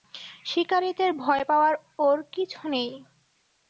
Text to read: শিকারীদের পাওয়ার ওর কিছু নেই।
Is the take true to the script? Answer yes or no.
no